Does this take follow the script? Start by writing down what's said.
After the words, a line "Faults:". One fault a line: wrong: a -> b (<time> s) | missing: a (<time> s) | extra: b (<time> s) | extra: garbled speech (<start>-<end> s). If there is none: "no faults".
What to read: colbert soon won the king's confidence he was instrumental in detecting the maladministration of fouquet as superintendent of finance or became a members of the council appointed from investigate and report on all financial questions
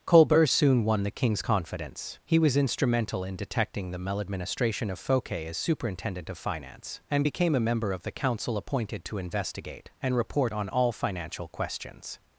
colbert soon won the king's confidence he was instrumental in detecting the maladministration of fouquet as superintendent of finance and became a member of the council appointed to investigate and report on all financial questions
Faults:
wrong: or -> and (7.1 s)
wrong: members -> member (7.6 s)
wrong: from -> to (9.1 s)